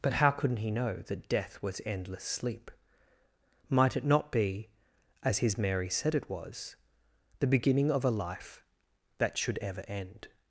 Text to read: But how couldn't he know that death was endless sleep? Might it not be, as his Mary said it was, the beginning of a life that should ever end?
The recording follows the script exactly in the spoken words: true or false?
true